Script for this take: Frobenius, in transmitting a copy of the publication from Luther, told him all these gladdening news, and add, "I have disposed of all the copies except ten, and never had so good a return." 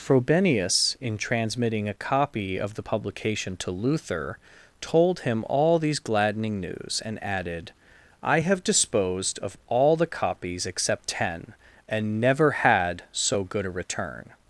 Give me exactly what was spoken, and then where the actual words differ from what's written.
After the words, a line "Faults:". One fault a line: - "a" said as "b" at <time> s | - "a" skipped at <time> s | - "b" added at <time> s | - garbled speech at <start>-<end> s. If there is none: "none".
Frobenius, in transmitting a copy of the publication to Luther, told him all these gladdening news, and added, "I have disposed of all the copies except ten, and never had so good a return."
Faults:
- "from" said as "to" at 3.6 s
- "add" said as "added" at 7.2 s